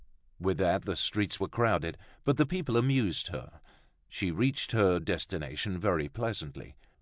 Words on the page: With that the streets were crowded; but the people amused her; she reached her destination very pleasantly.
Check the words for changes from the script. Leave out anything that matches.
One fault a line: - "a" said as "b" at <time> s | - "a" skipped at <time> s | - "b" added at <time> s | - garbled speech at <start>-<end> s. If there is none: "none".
none